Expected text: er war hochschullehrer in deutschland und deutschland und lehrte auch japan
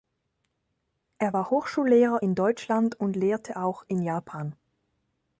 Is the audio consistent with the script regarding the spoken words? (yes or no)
no